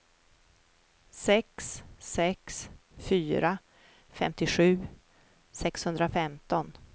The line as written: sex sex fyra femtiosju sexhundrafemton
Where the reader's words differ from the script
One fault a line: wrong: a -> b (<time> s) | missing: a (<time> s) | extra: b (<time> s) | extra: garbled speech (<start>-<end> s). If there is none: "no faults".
no faults